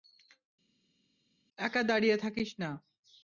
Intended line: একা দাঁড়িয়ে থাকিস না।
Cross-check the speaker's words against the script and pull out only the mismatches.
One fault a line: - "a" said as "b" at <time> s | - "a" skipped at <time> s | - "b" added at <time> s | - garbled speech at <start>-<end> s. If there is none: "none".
none